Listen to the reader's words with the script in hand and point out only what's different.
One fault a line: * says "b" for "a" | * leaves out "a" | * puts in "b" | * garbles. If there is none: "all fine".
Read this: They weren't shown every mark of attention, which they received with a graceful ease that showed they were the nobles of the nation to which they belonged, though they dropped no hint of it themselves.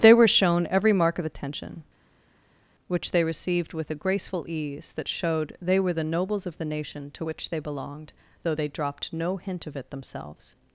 * says "were" for "weren't"